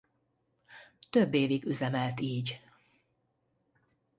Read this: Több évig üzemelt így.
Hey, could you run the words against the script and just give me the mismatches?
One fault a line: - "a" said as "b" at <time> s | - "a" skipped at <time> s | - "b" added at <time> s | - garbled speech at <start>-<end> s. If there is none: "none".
none